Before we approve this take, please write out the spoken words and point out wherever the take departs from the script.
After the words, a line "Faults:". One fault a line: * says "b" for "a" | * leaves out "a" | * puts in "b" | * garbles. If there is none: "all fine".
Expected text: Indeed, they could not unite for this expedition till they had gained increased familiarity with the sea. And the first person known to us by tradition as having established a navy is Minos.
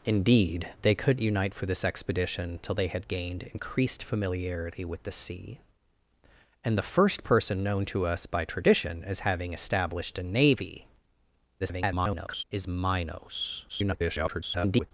Indeed, they could unite for this expedition till they had gained increased familiarity with the sea. And the first person known to us by tradition as having established a navy [garbled] is Minos. [garbled]
Faults:
* leaves out "not"
* garbles
* garbles